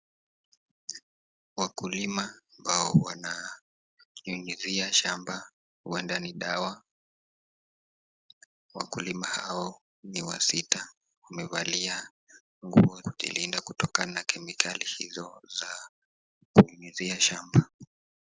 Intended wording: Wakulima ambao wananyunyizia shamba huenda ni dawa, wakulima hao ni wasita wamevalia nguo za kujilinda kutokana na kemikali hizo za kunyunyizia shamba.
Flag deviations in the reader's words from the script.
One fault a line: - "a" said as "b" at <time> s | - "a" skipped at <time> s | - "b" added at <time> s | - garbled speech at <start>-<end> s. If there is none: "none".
- "za" skipped at 13.0 s